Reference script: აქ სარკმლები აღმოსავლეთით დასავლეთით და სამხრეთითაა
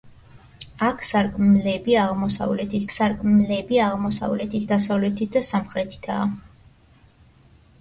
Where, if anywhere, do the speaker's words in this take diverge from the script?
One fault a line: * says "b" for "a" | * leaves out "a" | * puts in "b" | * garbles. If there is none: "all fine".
* puts in "სარკმლები აღმოსავლეთით"